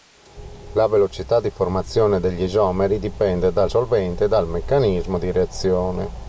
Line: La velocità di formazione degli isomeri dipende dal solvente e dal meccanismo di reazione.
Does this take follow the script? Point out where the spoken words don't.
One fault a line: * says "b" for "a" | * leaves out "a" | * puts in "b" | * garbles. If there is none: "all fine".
all fine